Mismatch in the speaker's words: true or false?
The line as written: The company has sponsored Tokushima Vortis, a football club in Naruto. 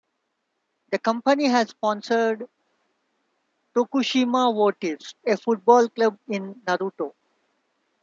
false